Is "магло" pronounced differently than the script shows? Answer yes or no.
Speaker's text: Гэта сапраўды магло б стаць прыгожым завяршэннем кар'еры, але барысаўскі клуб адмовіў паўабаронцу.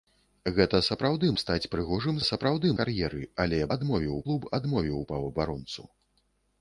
yes